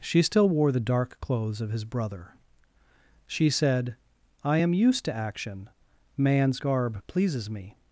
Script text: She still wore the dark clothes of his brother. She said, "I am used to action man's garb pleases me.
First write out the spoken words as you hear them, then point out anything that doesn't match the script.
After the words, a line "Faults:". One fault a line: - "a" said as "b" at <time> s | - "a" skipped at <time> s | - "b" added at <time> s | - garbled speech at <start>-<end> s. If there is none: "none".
She still wore the dark clothes of his brother. She said, "I am used to action man's garb pleases me.
Faults:
none